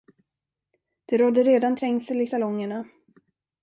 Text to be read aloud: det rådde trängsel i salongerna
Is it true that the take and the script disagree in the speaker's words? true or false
true